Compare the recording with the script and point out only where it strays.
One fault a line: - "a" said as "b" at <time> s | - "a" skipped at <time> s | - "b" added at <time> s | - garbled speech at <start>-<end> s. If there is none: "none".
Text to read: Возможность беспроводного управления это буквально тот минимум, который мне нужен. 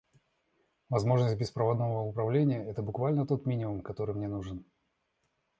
none